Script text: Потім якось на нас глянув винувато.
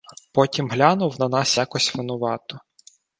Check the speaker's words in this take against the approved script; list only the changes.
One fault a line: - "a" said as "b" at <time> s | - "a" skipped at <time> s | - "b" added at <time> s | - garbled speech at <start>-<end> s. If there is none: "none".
- "якось" said as "глянув" at 0.7 s
- "глянув" said as "якось" at 1.6 s